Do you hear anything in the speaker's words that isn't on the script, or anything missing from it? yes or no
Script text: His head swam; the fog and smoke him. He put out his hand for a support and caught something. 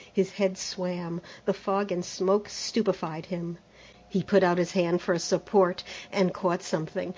yes